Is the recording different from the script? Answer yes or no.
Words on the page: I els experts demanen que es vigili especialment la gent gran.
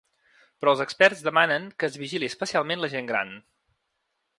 yes